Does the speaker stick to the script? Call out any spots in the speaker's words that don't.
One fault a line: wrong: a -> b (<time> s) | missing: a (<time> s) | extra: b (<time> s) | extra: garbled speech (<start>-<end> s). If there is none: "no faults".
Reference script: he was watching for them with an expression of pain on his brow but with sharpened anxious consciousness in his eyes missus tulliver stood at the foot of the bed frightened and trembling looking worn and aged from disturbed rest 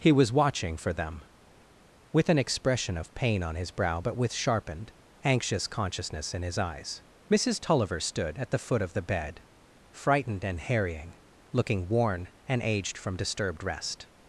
wrong: trembling -> harrying (10.6 s)